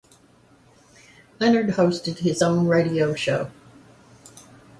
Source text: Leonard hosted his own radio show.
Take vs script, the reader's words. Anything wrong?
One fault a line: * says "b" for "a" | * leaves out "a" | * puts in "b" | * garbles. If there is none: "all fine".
all fine